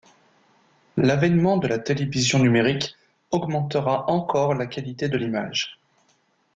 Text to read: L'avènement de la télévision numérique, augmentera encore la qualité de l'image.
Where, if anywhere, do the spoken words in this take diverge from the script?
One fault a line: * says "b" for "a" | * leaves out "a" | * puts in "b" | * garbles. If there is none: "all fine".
all fine